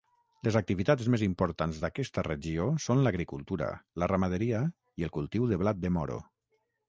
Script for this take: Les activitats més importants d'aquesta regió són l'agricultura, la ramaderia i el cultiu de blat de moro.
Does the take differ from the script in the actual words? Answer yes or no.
no